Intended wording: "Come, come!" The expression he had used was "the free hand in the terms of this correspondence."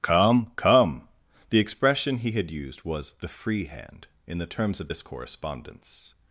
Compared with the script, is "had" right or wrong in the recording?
right